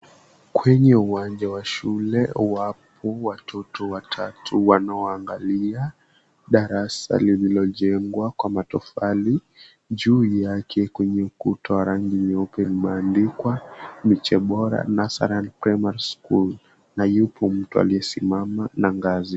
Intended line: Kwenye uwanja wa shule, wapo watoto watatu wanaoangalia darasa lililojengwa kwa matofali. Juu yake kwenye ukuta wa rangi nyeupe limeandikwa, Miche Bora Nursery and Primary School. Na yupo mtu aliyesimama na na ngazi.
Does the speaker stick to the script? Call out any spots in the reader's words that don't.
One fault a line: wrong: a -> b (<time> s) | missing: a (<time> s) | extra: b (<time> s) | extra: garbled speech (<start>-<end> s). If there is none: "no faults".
missing: na (18.9 s)